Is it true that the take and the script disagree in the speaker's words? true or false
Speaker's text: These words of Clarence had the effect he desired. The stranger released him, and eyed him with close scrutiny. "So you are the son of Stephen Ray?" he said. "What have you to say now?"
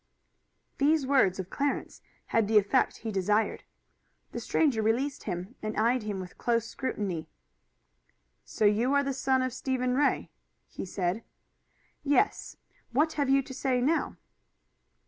true